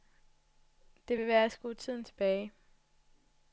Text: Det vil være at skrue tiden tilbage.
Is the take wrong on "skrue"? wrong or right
right